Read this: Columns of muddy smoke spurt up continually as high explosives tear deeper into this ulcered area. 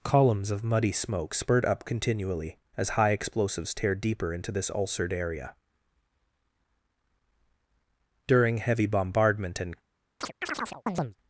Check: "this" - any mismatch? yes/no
no